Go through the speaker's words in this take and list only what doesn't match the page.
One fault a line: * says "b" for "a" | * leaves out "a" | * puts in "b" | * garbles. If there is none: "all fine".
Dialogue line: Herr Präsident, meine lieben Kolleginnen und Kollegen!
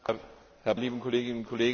* leaves out "Präsident meine"